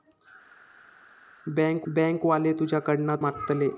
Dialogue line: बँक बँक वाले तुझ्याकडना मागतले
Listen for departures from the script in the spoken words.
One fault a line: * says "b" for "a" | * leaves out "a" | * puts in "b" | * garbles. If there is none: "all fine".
all fine